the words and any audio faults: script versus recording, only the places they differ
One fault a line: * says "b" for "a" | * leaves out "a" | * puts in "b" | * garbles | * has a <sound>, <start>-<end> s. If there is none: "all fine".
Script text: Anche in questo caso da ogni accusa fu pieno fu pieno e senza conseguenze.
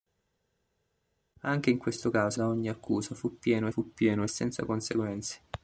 all fine